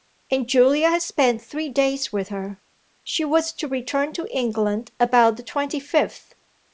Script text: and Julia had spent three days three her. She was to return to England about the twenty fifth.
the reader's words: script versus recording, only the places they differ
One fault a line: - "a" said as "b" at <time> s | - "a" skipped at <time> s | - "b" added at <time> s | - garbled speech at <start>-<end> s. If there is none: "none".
- "three" said as "with" at 2.1 s